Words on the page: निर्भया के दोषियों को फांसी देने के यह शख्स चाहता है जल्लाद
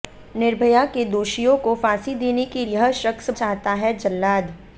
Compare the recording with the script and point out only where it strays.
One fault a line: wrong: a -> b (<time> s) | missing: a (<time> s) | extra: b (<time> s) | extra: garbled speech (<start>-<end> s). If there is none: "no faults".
no faults